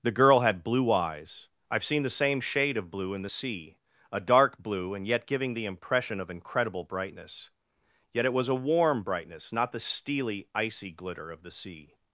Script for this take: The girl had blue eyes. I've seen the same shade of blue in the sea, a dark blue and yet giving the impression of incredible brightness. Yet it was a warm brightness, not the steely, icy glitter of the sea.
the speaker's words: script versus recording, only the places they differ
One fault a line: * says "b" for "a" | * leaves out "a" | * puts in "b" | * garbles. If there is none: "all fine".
all fine